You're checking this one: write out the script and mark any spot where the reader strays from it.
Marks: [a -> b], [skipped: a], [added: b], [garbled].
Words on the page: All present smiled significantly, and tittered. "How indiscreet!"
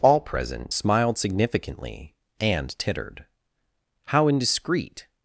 All present smiled significantly, and tittered. "How indiscreet!"